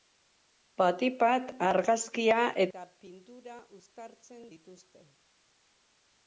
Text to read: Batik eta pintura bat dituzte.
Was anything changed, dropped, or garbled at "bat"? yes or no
yes